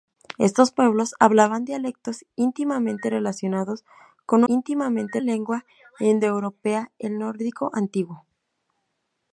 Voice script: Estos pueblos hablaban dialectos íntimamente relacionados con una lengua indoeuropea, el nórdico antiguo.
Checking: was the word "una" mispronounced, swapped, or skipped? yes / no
yes